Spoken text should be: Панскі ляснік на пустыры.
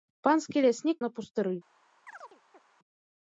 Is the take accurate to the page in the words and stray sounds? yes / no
no